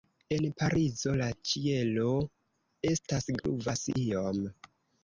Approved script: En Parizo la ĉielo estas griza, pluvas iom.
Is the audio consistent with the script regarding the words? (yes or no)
no